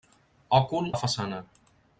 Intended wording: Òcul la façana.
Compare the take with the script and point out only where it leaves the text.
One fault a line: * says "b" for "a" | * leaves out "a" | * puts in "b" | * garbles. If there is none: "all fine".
all fine